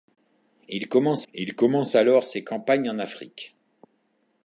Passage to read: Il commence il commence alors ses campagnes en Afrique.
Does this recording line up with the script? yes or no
yes